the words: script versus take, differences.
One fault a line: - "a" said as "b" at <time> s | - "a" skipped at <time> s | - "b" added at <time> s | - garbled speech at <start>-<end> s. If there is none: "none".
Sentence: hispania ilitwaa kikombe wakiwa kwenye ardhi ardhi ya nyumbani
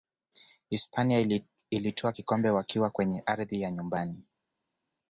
- "ardhi" skipped at 3.6 s